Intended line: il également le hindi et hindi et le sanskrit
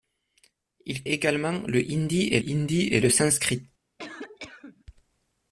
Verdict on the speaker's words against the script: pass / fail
pass